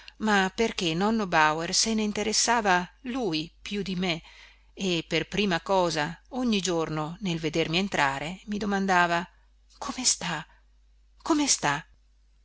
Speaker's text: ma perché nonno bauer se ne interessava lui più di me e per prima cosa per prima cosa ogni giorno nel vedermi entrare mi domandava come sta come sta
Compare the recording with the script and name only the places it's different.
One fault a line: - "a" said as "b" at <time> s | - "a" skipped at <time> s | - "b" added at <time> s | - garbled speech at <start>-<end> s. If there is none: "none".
- "per prima cosa" skipped at 6.2 s